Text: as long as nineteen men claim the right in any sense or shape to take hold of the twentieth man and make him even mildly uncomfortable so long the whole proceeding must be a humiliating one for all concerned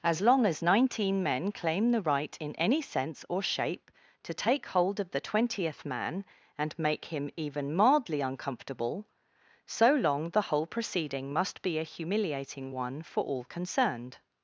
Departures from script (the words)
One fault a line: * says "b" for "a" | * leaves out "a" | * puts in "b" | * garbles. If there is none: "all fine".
all fine